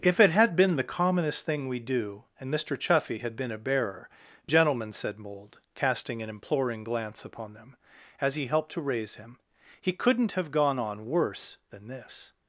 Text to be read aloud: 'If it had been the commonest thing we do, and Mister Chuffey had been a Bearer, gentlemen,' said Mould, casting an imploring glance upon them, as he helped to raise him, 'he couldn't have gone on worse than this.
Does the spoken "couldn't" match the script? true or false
true